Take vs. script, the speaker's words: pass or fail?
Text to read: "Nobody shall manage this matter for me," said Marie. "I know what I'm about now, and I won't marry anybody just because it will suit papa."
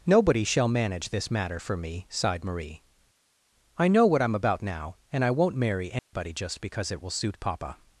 fail